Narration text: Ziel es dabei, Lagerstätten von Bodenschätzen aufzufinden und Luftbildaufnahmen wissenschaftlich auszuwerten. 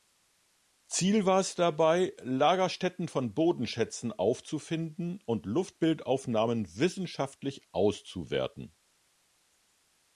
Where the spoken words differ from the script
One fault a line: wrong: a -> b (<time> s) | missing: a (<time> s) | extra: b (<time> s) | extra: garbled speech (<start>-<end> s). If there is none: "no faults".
extra: war (1.3 s)